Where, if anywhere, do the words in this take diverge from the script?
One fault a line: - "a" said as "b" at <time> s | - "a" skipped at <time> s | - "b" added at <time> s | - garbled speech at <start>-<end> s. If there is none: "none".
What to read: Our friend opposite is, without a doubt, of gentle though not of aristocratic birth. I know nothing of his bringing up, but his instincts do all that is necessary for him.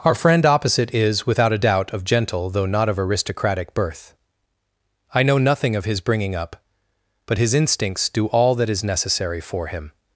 none